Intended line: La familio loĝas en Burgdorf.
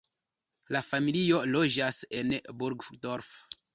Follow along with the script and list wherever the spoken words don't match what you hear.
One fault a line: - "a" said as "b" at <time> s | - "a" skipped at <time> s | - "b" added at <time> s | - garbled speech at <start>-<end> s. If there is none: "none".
none